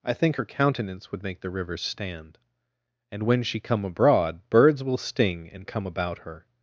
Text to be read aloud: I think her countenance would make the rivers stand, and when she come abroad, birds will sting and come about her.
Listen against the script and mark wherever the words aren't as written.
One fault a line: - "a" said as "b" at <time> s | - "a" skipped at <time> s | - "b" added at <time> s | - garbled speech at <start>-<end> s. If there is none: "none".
none